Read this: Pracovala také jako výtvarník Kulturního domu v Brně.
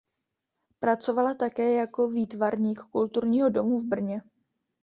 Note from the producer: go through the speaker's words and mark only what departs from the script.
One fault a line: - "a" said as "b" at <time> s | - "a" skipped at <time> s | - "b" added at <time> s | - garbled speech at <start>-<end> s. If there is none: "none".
none